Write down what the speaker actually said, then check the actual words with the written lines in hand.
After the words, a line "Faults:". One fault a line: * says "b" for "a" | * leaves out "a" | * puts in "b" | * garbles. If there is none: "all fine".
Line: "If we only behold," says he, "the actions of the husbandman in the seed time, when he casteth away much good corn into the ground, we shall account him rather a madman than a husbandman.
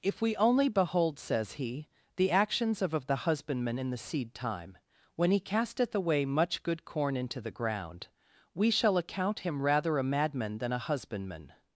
"If we only behold," says he, "the actions of of the husbandman in the seed time, when he casteth away much good corn into the ground, we shall account him rather a madman than a husbandman.
Faults:
* puts in "of"